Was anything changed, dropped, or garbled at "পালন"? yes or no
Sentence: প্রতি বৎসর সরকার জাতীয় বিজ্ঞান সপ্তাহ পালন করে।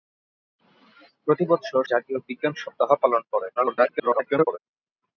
no